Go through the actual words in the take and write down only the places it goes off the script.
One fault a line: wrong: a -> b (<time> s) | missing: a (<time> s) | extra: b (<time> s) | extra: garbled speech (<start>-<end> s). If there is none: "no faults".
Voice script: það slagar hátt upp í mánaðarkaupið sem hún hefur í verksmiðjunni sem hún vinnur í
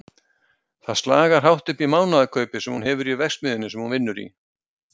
no faults